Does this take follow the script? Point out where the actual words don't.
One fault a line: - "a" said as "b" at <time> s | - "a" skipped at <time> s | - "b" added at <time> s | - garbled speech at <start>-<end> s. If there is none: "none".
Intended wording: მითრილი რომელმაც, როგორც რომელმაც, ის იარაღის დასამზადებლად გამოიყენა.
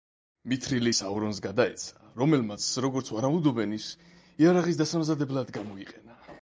- "საურონს გადაეცა" added at 0.9 s
- "რომელმაც" said as "ვარაუდობენ" at 3.2 s